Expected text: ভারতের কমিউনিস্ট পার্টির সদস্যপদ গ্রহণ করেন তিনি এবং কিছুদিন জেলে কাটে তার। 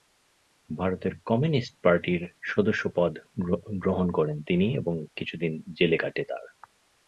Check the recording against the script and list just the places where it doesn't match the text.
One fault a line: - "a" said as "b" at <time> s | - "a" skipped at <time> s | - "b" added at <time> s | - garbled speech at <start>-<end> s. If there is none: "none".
none